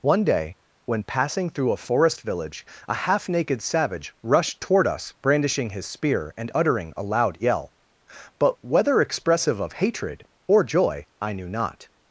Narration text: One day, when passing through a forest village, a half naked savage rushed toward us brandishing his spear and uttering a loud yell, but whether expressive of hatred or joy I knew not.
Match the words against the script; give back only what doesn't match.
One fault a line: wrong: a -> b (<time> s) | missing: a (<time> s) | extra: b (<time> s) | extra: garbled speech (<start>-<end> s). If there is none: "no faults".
no faults